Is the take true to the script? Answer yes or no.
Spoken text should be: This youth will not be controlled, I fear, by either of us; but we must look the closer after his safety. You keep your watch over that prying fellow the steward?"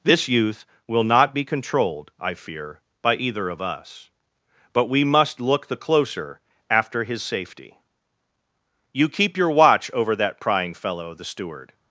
yes